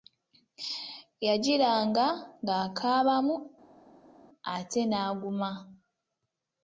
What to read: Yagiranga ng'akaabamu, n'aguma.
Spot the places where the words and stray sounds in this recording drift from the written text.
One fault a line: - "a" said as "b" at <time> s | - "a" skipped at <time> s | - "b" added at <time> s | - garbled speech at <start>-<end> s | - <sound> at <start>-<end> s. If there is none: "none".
- "ate" added at 4.5 s